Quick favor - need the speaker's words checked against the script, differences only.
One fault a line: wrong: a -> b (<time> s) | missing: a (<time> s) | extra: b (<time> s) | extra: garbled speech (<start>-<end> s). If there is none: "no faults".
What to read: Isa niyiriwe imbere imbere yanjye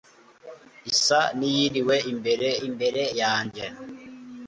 no faults